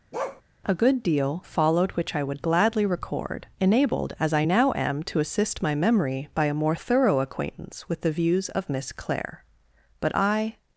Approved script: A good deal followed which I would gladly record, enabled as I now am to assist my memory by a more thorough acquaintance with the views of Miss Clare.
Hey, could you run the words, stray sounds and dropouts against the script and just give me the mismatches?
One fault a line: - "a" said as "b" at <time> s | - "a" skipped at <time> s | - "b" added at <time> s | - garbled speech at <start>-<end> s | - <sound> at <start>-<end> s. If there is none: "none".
- bark at 0.1-0.4 s
- "But I" added at 10.0 s